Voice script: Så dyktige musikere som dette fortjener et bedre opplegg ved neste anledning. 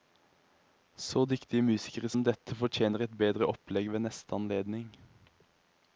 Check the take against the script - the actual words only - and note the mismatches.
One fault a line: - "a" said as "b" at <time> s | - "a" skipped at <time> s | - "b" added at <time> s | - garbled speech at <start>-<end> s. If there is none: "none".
none